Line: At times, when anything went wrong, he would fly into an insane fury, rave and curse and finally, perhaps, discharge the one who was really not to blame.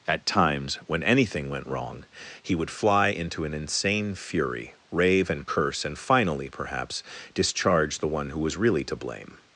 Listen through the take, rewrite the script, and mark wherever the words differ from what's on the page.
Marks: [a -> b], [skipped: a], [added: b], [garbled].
At times, when anything went wrong, he would fly into an insane fury, rave and curse and finally, perhaps, discharge the one who was really [skipped: not] to blame.